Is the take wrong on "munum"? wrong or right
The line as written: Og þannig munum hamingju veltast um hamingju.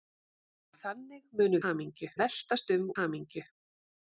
right